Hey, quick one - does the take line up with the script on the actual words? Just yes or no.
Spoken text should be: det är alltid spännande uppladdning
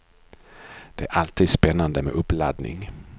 no